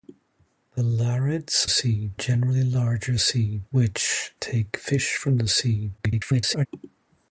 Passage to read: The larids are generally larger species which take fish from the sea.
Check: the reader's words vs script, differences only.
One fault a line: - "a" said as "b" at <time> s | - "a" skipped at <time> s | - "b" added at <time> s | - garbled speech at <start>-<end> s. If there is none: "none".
- "are" said as "sea" at 1.7 s
- "species" said as "sea" at 3.2 s
- garbled speech at 6.0-6.7 s